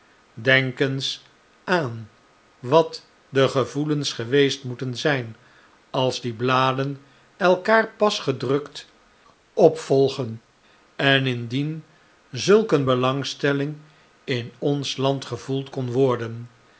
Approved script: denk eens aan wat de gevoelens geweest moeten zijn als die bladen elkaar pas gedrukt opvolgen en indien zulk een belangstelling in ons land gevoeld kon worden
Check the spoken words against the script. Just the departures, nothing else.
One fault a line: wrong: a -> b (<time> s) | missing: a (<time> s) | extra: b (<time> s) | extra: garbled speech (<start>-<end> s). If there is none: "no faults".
no faults